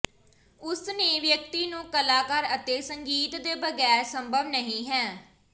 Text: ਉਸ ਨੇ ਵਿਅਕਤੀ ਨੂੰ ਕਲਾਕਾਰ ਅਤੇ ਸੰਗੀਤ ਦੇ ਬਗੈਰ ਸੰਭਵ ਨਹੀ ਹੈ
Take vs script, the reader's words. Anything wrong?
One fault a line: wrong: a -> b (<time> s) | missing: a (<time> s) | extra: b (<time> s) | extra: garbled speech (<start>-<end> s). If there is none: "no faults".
no faults